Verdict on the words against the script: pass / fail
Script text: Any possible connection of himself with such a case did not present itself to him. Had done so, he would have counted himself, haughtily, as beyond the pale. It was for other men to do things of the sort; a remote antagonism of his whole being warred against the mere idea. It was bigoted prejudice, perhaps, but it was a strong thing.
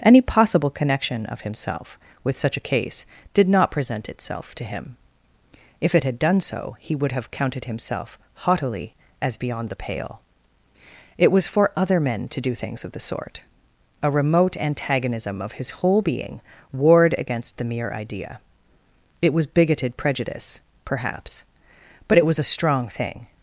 fail